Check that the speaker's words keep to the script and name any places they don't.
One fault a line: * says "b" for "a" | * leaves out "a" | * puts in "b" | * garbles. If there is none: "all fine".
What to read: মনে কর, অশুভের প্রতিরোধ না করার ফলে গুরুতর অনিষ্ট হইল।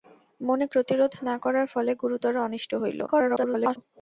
* leaves out "কর অশুভের"
* garbles